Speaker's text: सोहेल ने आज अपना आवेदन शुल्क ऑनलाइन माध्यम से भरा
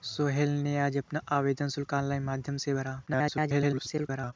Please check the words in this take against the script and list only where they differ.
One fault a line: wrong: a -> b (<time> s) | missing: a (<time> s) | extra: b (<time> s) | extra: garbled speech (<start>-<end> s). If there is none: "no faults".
extra: garbled speech (3.1-4.3 s)